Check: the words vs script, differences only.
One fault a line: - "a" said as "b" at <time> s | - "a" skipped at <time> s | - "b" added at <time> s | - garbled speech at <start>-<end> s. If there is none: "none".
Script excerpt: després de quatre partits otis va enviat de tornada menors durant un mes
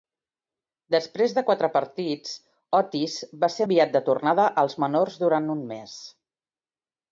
- "ser" added at 3.6 s
- "als" added at 4.7 s